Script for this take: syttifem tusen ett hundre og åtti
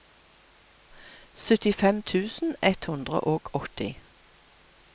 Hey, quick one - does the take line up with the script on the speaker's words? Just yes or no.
yes